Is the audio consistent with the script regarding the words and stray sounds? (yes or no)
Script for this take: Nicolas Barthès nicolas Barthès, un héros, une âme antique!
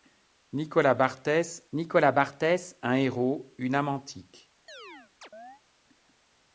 no